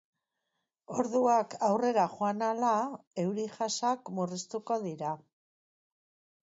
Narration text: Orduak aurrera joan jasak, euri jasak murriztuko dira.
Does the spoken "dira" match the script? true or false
true